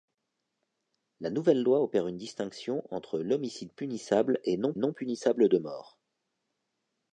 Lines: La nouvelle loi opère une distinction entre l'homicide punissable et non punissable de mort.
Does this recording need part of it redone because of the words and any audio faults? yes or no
yes